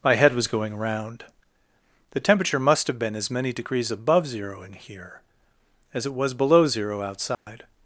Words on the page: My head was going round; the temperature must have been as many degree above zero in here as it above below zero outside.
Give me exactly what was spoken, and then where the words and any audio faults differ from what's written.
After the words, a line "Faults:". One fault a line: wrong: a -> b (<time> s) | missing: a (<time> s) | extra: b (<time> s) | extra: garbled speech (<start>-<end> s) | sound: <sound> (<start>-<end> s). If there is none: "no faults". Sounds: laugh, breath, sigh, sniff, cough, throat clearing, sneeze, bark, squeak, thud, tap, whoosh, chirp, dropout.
My head was going round; the temperature must have been as many degrees above zero in here as it was below zero outside.
Faults:
wrong: degree -> degrees (3.5 s)
wrong: above -> was (6.2 s)
sound: dropout (7.3-7.5 s)